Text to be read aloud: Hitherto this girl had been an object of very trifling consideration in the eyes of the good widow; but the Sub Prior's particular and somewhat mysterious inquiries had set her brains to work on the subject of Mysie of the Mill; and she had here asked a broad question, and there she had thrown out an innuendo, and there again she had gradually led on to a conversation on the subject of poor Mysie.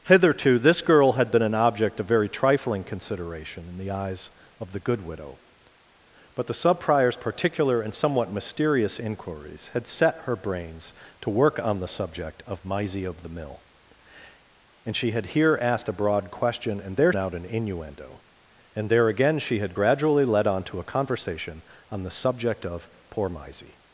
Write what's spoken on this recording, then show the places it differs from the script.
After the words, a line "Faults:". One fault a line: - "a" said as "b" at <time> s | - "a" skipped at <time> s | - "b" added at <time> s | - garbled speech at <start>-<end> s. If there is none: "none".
Hitherto this girl had been an object of very trifling consideration in the eyes of the good widow; but the Sub Prior's particular and somewhat mysterious inquiries had set her brains to work on the subject of Mysie of the Mill; and she had here asked a broad question, and there out an innuendo, and there again she had gradually led on to a conversation on the subject of poor Mysie.
Faults:
- "she had thrown" skipped at 17.1 s